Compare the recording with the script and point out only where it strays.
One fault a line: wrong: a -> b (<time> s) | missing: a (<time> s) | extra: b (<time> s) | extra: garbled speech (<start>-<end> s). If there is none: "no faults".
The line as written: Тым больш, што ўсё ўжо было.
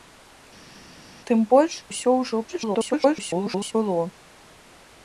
missing: што (1.7 s)
extra: garbled speech (2.5-3.7 s)